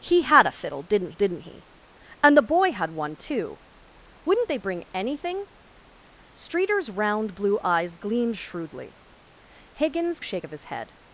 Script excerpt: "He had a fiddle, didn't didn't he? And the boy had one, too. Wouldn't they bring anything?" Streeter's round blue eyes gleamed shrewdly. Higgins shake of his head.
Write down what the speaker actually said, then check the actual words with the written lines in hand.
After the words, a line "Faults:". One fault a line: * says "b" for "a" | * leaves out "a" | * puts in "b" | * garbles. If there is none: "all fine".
"He had a fiddle, didn't didn't he? And the boy had one, too. Wouldn't they bring anything?" Streeter's round blue eyes gleamed shrewdly. Higgins shake of his head.
Faults:
all fine